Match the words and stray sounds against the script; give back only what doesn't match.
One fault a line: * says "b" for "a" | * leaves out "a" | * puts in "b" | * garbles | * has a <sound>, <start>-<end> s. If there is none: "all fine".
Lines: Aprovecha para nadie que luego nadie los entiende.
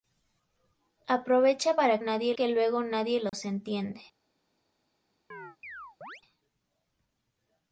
* has a dropout, 3.3-3.3 s
* has a chirp, 5.3-6.2 s